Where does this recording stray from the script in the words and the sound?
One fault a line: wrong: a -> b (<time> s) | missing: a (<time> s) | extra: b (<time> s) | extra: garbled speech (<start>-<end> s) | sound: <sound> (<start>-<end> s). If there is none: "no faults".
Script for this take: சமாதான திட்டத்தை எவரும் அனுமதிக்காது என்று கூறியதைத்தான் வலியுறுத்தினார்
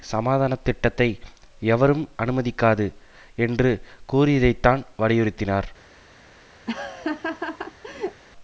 sound: laugh (6.7-8.2 s)